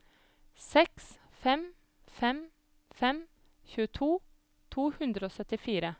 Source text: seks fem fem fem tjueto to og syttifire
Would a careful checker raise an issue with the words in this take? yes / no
yes